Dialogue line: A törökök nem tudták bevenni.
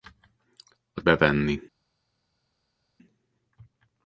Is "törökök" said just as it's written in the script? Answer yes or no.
no